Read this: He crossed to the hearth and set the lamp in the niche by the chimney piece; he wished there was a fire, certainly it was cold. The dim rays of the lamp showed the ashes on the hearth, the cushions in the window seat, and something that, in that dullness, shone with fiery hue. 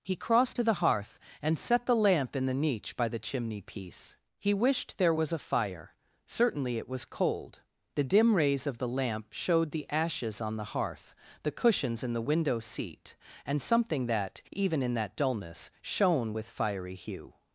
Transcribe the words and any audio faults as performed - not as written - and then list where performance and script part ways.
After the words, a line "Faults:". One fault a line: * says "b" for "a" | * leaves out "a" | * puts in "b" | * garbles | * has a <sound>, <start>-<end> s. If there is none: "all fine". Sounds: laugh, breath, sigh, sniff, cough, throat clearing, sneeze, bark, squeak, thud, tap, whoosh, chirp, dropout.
He crossed to the hearth and set the lamp in the niche by the chimney piece; he wished there was a fire, certainly it was cold. The dim rays of the lamp showed the ashes on the hearth, the cushions in the window seat, and something that, even in that dullness, shone with fiery hue.
Faults:
* puts in "even"